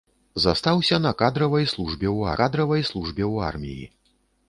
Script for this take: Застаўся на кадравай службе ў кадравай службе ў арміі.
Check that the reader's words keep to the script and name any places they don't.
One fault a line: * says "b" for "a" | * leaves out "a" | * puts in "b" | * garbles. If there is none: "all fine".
all fine